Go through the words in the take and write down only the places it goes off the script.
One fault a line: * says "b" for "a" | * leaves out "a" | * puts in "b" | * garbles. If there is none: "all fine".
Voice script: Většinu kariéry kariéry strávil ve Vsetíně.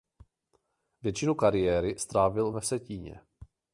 * leaves out "kariéry"